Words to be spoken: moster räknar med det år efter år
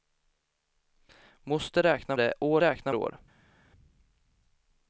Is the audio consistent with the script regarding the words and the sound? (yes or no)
no